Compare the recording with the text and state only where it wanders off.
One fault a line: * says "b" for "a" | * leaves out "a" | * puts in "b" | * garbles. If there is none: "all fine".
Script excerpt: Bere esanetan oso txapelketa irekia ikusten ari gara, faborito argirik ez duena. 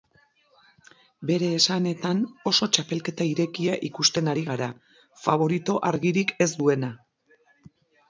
all fine